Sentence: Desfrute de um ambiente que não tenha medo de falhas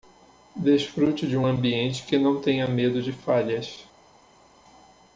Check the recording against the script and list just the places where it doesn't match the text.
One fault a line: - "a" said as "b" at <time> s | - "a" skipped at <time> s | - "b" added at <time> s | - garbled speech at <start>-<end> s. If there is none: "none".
none